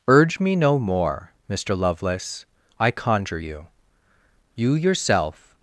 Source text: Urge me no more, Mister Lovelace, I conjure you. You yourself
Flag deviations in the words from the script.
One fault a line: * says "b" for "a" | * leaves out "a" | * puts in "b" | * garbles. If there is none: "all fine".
all fine